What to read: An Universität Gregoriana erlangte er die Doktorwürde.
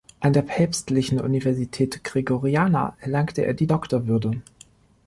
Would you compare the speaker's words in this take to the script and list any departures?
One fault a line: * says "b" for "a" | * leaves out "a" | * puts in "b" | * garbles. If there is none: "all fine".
* puts in "der Päpstlichen"